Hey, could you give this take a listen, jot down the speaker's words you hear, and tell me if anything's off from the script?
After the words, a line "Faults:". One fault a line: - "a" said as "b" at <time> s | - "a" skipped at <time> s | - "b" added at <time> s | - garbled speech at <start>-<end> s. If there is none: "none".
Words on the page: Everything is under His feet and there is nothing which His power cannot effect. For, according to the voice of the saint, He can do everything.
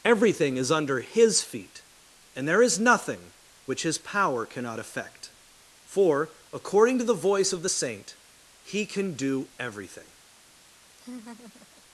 Everything is under His feet and there is nothing which His power cannot effect. For, according to the voice of the saint, He can do everything.
Faults:
none